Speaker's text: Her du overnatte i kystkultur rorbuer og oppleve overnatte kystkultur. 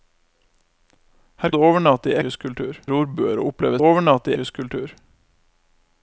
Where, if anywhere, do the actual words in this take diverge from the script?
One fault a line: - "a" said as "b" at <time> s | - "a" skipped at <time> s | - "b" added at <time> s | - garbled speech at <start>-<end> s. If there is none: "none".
none